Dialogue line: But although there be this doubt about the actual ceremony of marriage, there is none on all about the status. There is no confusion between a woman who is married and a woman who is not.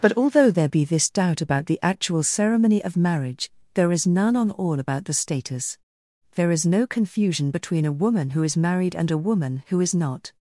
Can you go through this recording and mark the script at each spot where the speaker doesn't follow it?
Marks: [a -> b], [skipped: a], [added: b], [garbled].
But although there be this doubt about the actual ceremony of marriage, there is none on all about the status. There is no confusion between a woman who is married and a woman who is not.